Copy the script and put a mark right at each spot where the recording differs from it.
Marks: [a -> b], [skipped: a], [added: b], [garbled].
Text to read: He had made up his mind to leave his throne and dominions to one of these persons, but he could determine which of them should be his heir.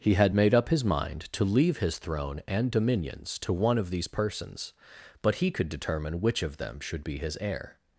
He had made up his mind to leave his throne and dominions to one of these persons, but he could determine which of them should be his heir.